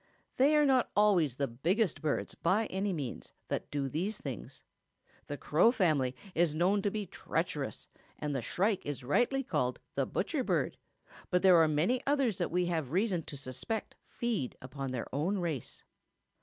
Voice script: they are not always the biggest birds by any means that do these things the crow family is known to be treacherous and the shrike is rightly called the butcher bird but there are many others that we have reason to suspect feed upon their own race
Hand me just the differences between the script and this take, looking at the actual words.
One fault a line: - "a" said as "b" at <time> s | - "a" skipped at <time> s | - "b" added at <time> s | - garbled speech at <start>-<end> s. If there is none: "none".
none